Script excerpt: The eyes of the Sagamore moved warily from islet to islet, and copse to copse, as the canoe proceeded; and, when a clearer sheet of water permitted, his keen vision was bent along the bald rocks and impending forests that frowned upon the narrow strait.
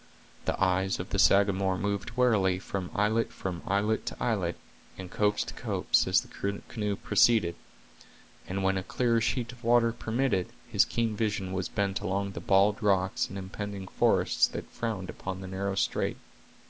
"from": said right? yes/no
yes